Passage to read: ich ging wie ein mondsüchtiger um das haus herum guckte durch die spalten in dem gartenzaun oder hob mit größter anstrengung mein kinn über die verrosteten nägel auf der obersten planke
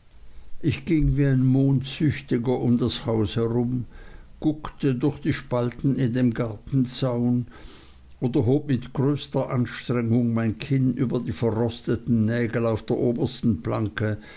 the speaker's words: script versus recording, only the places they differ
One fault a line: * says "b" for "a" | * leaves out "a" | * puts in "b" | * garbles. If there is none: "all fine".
all fine